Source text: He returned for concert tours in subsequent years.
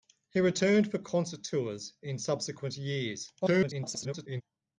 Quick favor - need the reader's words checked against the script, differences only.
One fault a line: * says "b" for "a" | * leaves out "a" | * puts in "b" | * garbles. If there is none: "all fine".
* garbles